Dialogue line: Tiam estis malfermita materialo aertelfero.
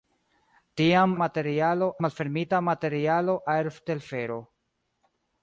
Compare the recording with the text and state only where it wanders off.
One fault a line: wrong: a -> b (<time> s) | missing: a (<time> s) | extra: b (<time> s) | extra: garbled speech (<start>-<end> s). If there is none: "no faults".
wrong: estis -> materialo (1.2 s)